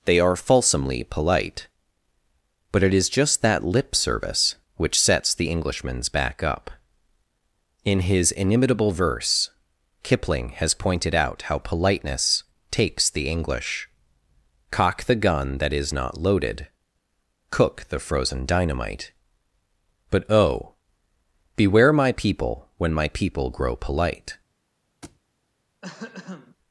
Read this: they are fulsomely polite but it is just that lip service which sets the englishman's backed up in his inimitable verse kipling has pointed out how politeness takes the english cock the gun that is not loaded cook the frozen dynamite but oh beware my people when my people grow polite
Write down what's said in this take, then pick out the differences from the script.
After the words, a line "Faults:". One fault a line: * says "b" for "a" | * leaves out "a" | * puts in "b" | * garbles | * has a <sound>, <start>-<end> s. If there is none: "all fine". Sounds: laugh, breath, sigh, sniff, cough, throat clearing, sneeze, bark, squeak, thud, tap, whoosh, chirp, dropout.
they are fulsomely polite but it is just that lip service which sets the englishman's back up in his inimitable verse kipling has pointed out how politeness takes the english cock the gun that is not loaded cook the frozen dynamite but oh beware my people when my people grow polite
Faults:
* says "back" for "backed"
* has a thud, 25.0-25.2 s
* has a throat clearing, 25.8-26.6 s